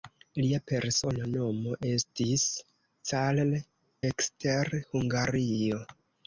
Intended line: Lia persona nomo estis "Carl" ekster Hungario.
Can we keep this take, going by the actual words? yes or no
yes